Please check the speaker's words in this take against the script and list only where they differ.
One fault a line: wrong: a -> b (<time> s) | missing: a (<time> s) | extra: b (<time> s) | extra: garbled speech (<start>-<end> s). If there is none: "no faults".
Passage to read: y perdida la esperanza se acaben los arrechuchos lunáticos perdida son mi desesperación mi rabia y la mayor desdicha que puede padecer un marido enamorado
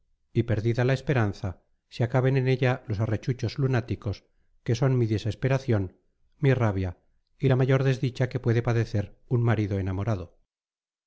extra: en ella (2.4 s)
wrong: perdida -> que (4.6 s)